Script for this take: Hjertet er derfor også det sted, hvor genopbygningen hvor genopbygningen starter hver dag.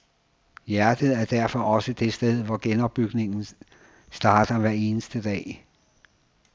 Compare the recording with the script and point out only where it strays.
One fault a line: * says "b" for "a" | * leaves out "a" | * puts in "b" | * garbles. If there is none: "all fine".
* leaves out "hvor genopbygningen"
* puts in "eneste"